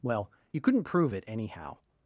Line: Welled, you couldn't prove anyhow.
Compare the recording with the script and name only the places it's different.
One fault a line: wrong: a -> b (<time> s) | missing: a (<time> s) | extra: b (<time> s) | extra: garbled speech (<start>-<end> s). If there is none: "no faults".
wrong: Welled -> Well (0.0 s)
extra: it (1.1 s)